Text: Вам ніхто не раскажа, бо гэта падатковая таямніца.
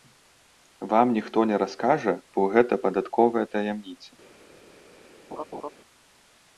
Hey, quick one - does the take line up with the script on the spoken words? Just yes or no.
yes